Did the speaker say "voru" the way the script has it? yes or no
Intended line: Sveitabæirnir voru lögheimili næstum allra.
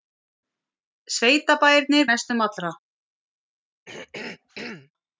no